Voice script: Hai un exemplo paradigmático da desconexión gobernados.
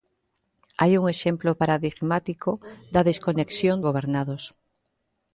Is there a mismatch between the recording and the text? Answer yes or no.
no